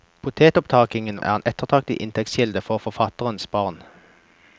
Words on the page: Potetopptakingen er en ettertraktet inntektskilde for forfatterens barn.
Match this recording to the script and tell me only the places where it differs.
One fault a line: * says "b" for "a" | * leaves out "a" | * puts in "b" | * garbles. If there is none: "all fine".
all fine